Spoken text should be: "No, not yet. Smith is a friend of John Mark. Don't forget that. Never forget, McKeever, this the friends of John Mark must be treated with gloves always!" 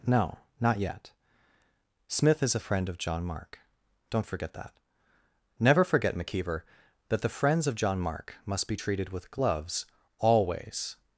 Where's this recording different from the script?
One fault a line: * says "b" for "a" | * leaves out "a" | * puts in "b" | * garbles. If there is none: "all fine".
* says "that" for "this"